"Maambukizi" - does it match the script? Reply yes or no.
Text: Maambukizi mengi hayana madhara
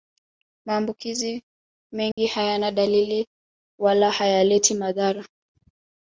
yes